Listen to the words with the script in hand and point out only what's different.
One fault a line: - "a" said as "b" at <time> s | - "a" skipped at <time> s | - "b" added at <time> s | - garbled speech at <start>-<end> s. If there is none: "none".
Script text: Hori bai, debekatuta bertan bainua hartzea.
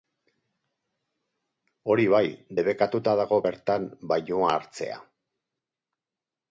- "dago" added at 3.2 s